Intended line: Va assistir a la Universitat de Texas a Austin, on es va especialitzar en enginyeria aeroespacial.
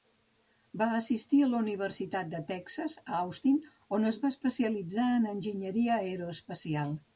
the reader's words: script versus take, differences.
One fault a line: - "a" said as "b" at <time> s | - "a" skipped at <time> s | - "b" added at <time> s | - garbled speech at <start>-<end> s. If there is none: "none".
none